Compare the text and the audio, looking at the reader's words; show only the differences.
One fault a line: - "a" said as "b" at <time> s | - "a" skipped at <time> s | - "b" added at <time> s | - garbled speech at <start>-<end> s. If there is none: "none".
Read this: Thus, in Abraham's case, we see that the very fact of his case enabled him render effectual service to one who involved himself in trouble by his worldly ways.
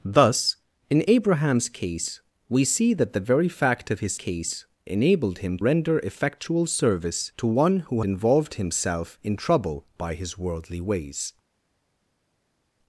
none